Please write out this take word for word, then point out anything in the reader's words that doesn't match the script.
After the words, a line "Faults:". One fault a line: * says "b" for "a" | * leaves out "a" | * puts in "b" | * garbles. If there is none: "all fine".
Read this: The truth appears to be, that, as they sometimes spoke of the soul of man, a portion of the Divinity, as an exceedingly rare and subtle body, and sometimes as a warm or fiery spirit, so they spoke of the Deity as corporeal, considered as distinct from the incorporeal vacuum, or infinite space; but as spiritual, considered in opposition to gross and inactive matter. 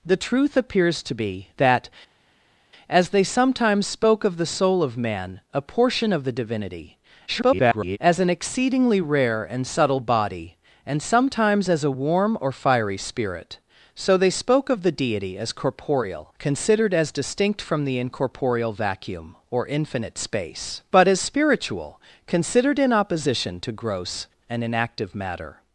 The truth appears to be, that, as they sometimes spoke of the soul of man, a portion of the Divinity, [garbled] as an exceedingly rare and subtle body, and sometimes as a warm or fiery spirit, so they spoke of the Deity as corporeal, considered as distinct from the incorporeal vacuum, or infinite space; but as spiritual, considered in opposition to gross and inactive matter.
Faults:
* garbles